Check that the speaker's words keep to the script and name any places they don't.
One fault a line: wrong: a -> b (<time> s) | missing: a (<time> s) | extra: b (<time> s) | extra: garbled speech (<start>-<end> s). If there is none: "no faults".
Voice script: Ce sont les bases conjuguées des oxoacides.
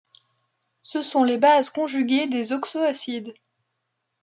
no faults